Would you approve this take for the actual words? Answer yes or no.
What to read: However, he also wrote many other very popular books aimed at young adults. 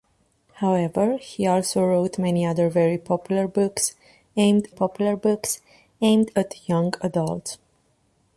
no